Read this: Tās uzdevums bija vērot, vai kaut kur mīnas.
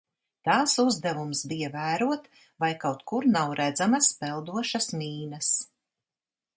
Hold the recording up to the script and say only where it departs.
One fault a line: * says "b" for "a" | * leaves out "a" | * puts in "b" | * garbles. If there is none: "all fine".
* puts in "nav redzamas peldošas"